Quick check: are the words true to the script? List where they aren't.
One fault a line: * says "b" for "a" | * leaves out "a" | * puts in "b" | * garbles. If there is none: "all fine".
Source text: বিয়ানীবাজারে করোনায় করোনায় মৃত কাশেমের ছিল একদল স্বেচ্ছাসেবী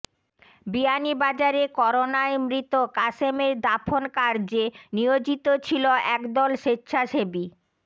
* leaves out "করোনায়"
* puts in "দাফন কার্যে নিয়োজিত"